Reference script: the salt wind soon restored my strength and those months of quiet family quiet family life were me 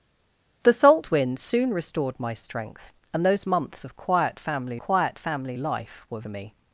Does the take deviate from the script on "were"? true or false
false